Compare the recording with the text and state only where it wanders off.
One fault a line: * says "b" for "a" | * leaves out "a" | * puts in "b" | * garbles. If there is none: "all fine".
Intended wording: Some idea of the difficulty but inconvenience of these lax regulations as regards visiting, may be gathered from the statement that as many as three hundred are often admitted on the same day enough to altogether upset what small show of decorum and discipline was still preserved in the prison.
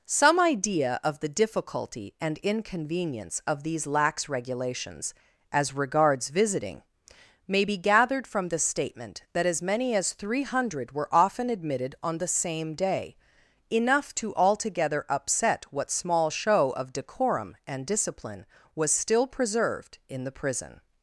* says "and" for "but"
* says "were" for "are"